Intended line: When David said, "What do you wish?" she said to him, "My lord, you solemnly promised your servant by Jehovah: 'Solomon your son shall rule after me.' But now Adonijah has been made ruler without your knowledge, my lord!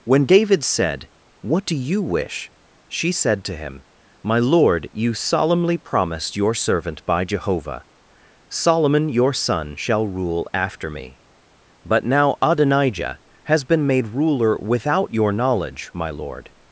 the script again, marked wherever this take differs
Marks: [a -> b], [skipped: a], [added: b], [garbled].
When David said, "What do you wish?" she said to him, "My lord, you solemnly promised your servant by Jehovah: 'Solomon your son shall rule after me.' But now Adonijah has been made ruler without your knowledge, my lord!